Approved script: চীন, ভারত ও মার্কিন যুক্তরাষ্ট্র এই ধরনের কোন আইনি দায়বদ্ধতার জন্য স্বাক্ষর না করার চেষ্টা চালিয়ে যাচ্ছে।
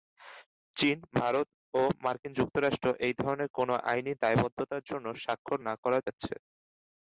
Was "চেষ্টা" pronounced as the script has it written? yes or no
no